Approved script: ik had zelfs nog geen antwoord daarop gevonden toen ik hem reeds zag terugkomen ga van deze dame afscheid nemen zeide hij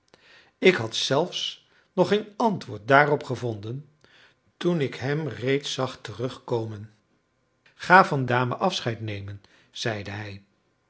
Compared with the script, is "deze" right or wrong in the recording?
wrong